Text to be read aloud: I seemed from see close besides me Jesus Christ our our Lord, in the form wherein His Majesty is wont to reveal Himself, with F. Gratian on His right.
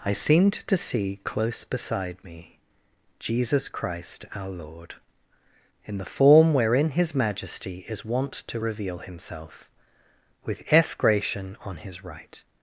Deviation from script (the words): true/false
true